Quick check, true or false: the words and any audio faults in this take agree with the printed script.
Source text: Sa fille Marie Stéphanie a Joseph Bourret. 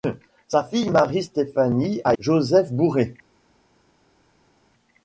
true